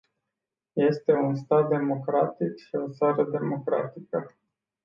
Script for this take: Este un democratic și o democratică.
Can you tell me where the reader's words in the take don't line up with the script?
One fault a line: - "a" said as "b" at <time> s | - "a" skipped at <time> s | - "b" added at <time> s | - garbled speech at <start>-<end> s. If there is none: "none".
- "stat" added at 1.4 s
- "țară" added at 2.9 s